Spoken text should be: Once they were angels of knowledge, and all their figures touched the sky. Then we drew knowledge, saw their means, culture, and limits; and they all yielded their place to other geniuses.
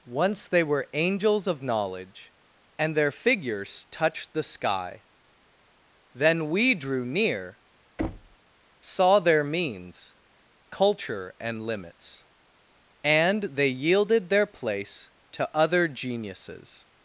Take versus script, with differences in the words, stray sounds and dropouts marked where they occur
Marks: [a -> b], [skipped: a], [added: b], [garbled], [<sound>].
Once they were angels of knowledge, and [skipped: all] their figures touched the sky. Then we drew [knowledge, -> near] [thud] saw their means, culture, and limits; and they [skipped: all] yielded their place to other geniuses.